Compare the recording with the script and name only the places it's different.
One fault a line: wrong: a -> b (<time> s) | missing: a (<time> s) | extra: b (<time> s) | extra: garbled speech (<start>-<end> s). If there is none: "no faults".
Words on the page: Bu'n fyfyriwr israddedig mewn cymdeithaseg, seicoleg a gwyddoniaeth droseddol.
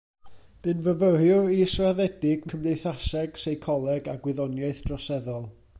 missing: mewn (2.5 s)